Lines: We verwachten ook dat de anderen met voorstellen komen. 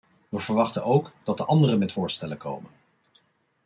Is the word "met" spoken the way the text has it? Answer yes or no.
yes